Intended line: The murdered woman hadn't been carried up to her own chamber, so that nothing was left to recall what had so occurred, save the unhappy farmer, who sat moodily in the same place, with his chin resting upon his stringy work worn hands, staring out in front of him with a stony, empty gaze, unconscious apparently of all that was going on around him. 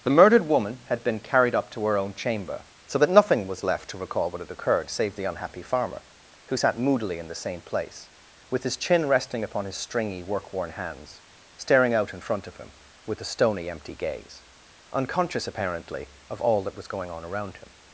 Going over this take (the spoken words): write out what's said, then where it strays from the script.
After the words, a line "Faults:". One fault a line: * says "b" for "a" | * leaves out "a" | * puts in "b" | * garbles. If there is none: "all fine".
The murdered woman had been carried up to her own chamber, so that nothing was left to recall what had occurred, save the unhappy farmer, who sat moodily in the same place, with his chin resting upon his stringy work worn hands, staring out in front of him with a stony, empty gaze, unconscious apparently of all that was going on around him.
Faults:
* says "had" for "hadn't"
* leaves out "so"